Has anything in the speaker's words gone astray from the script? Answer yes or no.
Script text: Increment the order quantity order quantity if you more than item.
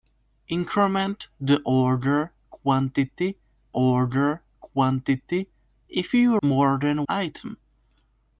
no